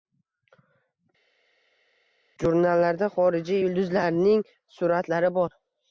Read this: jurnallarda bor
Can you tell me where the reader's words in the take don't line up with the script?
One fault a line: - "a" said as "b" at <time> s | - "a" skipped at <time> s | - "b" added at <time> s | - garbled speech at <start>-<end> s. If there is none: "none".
- "xorijiy yulduz”larning suratlari" added at 3.2 s